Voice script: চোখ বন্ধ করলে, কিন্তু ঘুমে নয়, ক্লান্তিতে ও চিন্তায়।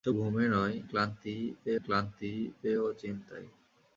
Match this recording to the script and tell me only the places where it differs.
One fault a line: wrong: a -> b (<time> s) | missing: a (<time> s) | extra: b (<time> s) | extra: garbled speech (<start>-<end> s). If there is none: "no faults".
missing: বন্ধ করলে কিন্তু (0.1 s)
extra: ক্লান্তিতে (1.8 s)